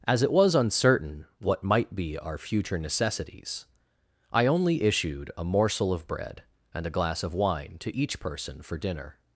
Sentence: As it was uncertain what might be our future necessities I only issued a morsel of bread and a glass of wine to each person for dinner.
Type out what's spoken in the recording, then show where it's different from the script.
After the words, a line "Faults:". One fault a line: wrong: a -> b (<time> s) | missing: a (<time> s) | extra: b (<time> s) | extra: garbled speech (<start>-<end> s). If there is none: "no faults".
As it was uncertain what might be our future necessities I only issued a morsel of bread and a glass of wine to each person for dinner.
Faults:
no faults